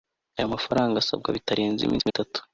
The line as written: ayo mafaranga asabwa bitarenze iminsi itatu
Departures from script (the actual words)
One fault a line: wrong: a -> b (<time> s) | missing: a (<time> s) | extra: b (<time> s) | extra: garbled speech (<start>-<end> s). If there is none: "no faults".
no faults